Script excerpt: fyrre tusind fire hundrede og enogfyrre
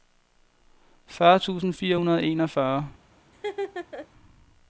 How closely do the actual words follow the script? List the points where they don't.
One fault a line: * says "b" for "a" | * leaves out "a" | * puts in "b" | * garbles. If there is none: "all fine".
all fine